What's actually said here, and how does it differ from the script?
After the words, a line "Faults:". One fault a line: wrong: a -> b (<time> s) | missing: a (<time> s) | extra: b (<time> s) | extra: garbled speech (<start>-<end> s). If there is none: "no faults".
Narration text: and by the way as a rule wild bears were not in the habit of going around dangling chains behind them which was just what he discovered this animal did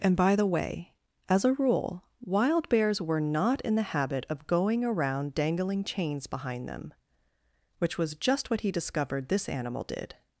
and by the way as a rule wild bears were not in the habit of going around dangling chains behind them which was just what he discovered this animal did
Faults:
no faults